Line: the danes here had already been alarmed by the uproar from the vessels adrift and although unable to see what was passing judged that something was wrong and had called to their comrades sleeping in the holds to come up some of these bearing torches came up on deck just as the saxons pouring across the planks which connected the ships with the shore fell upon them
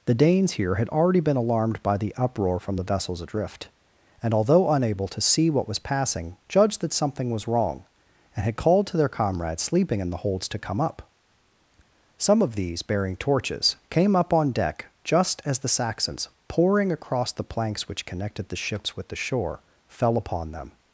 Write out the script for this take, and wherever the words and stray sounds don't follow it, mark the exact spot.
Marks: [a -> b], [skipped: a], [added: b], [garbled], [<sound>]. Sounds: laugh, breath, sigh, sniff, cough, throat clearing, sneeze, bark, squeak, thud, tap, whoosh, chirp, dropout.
the danes here had already been alarmed by the uproar from the vessels adrift and although unable to see what was passing judged that something was wrong and had called to their comrades sleeping in the holds to come up some of these bearing torches came up on deck just as the saxons pouring across the planks which connected the ships with the shore fell upon them